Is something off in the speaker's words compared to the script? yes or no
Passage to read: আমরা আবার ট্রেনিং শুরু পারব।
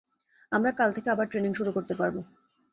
yes